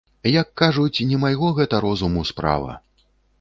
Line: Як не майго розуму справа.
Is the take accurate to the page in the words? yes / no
no